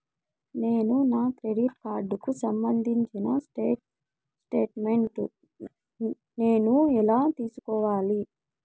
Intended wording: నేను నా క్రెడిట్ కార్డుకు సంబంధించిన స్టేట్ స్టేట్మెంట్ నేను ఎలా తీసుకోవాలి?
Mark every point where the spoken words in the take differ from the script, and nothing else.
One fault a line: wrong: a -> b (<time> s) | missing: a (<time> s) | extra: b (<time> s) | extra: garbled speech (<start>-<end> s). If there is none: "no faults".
no faults